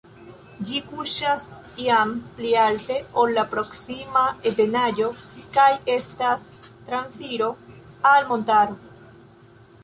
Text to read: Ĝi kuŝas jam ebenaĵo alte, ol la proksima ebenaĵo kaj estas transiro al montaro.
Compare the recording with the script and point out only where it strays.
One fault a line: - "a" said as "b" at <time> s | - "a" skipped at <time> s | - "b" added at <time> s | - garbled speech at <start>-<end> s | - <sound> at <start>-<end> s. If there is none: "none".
- "ebenaĵo" said as "pli" at 2.4 s